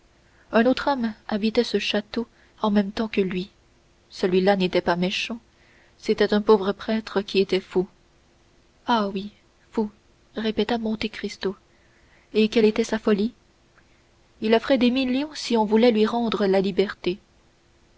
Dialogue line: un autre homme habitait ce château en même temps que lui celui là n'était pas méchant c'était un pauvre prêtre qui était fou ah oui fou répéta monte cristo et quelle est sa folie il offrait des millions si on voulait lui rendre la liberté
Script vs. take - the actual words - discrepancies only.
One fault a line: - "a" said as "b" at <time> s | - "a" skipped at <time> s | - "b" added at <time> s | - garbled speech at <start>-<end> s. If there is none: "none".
- "est" said as "était" at 12.6 s